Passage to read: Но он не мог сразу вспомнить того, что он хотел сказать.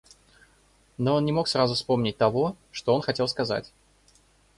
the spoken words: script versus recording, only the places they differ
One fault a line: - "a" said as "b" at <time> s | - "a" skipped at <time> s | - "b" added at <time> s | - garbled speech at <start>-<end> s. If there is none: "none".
none